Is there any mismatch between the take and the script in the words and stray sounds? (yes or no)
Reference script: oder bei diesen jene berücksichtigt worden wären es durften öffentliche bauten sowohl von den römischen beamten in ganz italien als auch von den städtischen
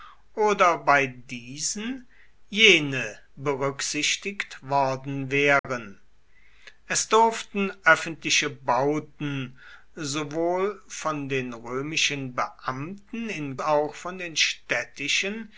yes